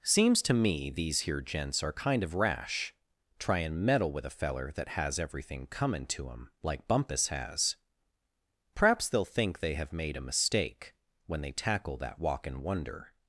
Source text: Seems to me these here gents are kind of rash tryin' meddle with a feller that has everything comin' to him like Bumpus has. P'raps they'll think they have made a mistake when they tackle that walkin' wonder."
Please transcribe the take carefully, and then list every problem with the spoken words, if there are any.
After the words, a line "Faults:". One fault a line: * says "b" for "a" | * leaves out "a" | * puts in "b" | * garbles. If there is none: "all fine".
Seems to me these here gents are kind of rash tryin' meddle with a feller that has everything comin' to him like Bumpus has. P'raps they'll think they have made a mistake when they tackle that walkin' wonder."
Faults:
all fine